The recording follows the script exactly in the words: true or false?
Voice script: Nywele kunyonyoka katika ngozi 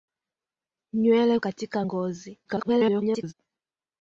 false